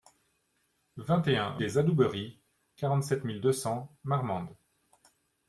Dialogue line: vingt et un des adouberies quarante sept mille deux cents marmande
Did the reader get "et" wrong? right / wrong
right